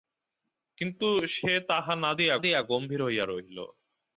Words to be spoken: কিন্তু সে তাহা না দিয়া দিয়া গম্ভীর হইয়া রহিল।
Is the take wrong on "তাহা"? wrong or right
right